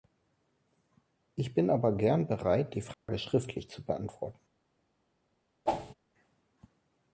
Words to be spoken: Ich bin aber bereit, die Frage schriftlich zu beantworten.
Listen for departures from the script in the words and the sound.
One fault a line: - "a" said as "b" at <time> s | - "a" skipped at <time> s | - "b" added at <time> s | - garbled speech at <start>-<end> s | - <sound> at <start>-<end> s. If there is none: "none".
- "gern" added at 1.9 s
- dropout at 2.9-3.1 s
- whoosh at 5.7-5.9 s